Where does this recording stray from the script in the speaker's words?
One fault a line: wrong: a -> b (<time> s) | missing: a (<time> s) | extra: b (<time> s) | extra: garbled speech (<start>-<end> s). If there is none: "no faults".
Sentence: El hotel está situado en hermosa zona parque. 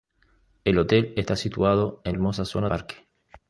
no faults